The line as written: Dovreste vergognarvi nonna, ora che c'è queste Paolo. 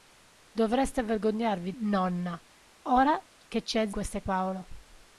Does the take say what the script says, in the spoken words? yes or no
yes